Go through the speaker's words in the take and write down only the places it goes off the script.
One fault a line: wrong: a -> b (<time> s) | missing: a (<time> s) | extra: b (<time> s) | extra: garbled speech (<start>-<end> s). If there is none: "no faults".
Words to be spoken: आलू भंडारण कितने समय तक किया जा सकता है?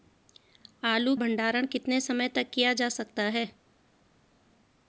no faults